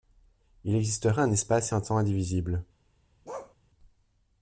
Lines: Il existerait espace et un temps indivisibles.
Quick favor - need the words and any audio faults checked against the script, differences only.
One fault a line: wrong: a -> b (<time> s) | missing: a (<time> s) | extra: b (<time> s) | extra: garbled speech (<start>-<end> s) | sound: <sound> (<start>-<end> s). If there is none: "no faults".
extra: un (1.2 s)
sound: bark (3.2-3.5 s)